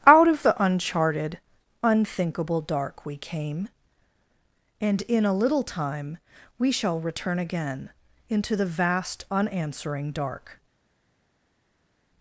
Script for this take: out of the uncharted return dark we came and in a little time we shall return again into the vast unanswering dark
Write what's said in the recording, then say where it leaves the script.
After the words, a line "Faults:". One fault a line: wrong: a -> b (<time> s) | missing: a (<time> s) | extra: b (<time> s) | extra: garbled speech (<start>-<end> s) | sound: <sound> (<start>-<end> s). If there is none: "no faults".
out of the uncharted unthinkable dark we came and in a little time we shall return again into the vast unanswering dark
Faults:
wrong: return -> unthinkable (1.8 s)